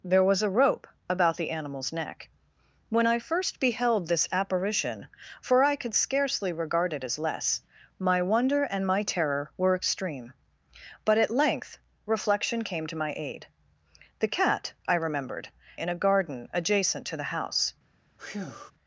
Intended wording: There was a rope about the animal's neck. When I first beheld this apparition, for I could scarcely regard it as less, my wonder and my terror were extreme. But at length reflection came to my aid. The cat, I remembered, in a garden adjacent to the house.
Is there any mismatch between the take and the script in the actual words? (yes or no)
no